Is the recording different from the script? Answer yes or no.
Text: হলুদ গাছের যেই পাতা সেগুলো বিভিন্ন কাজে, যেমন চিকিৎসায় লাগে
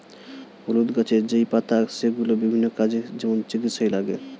no